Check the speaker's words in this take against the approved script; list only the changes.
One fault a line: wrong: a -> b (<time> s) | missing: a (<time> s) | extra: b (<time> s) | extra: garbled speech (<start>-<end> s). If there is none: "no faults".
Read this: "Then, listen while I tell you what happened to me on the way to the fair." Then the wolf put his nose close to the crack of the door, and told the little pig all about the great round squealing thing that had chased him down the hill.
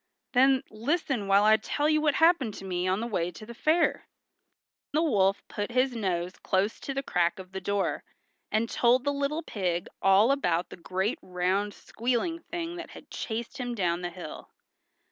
missing: Then (4.1 s)